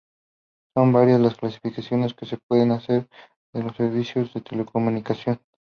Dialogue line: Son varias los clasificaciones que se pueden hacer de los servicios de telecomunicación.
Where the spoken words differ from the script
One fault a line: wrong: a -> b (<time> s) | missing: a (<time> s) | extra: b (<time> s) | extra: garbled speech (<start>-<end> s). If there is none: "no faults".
wrong: los -> las (1.2 s)